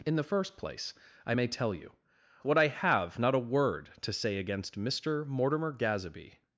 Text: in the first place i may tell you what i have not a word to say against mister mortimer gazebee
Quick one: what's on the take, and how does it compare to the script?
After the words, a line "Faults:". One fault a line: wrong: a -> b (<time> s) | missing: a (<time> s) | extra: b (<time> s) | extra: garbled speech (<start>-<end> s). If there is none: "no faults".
in the first place i may tell you what i have not a word to say against mister mortimer gazebee
Faults:
no faults